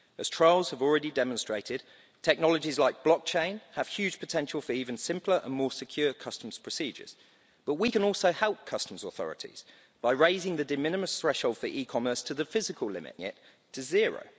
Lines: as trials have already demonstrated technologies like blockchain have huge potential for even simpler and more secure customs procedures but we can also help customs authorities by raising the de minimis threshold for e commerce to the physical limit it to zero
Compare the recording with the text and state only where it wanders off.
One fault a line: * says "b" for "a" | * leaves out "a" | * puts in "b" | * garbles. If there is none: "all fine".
all fine